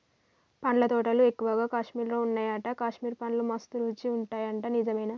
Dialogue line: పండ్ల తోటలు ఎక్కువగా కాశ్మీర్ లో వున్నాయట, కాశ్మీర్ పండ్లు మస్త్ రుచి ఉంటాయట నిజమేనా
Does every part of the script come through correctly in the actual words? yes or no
yes